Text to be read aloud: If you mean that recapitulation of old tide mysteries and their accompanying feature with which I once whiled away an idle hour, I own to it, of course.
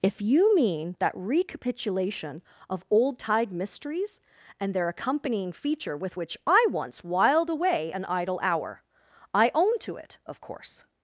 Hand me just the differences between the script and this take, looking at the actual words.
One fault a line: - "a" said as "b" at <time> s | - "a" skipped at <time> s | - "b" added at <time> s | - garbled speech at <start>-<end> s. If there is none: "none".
none